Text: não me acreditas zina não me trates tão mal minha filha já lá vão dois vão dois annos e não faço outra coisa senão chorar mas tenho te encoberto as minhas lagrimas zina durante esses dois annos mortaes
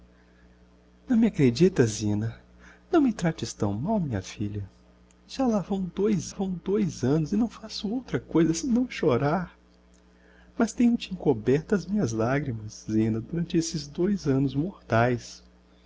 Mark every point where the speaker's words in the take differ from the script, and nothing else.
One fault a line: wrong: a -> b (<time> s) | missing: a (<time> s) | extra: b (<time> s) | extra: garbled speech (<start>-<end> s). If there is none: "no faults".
no faults